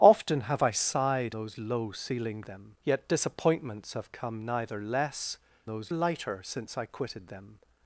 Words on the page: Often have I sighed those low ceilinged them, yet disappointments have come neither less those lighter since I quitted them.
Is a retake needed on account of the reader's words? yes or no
no